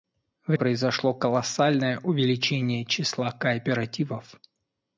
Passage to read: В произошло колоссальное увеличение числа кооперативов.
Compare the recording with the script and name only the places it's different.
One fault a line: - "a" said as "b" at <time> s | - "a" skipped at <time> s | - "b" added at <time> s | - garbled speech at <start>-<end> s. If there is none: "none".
none